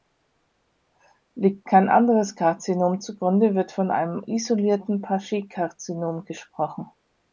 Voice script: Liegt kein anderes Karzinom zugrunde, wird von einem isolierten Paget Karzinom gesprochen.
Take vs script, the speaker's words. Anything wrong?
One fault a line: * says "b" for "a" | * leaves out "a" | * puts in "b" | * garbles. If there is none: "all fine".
all fine